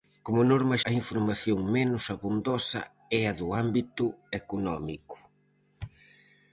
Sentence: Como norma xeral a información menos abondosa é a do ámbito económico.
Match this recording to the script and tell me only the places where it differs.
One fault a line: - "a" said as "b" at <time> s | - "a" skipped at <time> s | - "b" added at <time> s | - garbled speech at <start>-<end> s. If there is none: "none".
- "xeral" skipped at 0.8 s